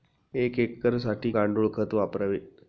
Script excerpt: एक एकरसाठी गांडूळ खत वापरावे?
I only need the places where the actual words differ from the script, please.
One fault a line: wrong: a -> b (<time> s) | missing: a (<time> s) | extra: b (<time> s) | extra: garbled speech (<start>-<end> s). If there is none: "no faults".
no faults